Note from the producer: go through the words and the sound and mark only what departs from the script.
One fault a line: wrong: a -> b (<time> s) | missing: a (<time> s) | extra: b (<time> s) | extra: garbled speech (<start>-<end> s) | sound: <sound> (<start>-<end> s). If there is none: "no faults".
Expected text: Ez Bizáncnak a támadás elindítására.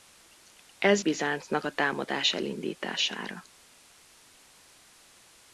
no faults